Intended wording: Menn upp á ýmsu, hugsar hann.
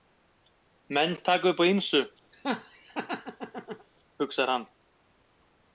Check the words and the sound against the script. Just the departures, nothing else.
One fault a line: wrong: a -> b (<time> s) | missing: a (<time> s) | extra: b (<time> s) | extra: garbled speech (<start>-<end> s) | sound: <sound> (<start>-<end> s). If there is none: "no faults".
extra: taka (1.3 s)
sound: laugh (2.3-3.9 s)